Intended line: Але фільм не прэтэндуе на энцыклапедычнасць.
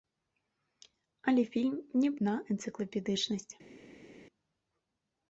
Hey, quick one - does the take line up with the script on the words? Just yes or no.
no